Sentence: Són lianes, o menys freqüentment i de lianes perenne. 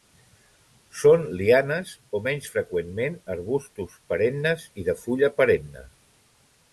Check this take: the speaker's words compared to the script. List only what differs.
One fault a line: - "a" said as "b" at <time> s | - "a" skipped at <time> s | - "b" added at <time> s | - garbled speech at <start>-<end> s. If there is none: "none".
- "arbustos perennes" added at 3.4 s
- "lianes" said as "fulla" at 5.1 s